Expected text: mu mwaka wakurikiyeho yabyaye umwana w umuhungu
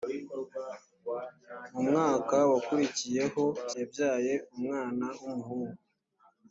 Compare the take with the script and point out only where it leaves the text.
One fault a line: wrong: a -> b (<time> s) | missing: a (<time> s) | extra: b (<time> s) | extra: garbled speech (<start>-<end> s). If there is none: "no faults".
no faults